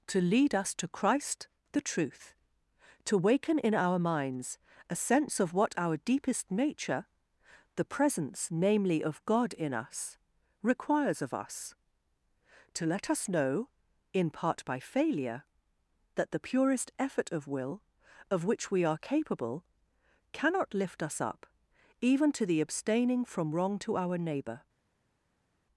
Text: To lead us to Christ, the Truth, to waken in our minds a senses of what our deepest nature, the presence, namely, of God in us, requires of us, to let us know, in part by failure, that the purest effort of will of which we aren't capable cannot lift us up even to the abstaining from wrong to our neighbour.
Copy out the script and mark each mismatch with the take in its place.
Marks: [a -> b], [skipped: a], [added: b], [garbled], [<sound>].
To lead us to Christ, the Truth, to waken in our minds a [senses -> sense] of what our deepest nature, the presence, namely, of God in us, requires of us, to let us know, in part by failure, that the purest effort of will of which we [aren't -> are] capable cannot lift us up even to the abstaining from wrong to our neighbour.